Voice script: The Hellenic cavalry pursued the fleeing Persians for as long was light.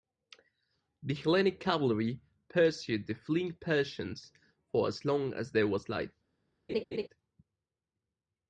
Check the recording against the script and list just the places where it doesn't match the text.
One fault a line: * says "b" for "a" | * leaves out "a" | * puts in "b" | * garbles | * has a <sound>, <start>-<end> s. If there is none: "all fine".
* puts in "as there"
* has a laugh, 6.7-7.1 s